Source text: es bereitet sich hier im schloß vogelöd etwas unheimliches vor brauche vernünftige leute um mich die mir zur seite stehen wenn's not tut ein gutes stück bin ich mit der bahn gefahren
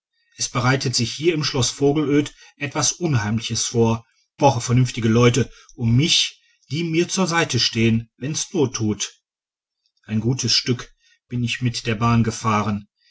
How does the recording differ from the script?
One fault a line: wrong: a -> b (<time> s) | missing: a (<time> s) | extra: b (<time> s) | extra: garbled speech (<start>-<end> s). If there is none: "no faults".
no faults